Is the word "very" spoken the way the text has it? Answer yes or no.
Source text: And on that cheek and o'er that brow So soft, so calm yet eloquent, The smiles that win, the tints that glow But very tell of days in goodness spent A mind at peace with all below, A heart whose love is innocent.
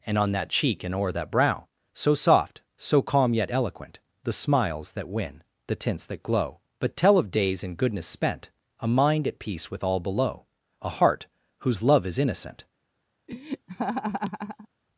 no